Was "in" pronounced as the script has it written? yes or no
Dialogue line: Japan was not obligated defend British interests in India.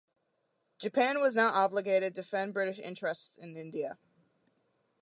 yes